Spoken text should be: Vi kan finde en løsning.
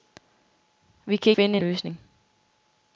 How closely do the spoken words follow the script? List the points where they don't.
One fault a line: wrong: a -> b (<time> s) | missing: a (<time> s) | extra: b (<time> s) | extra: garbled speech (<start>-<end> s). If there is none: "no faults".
no faults